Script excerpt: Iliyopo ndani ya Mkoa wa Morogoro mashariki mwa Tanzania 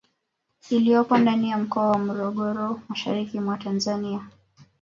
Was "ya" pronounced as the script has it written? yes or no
yes